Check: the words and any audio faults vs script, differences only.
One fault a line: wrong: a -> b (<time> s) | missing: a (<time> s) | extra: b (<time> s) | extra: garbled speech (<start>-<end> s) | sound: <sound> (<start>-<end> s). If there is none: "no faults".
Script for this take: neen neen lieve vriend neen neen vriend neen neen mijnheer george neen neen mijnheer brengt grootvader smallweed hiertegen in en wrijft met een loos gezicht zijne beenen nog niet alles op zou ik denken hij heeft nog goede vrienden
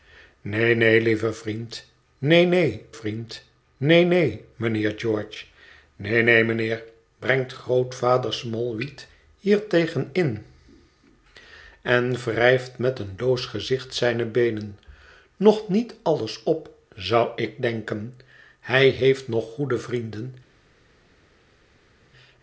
no faults